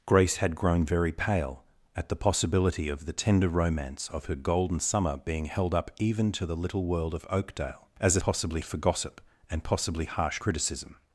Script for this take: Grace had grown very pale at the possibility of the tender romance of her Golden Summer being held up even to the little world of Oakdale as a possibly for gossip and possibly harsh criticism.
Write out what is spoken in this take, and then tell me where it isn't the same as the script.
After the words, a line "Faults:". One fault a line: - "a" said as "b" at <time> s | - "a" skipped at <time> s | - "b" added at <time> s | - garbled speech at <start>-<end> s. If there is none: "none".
Grace had grown very pale at the possibility of the tender romance of her Golden Summer being held up even to the little world of Oakdale as a possibly for gossip and possibly harsh criticism.
Faults:
none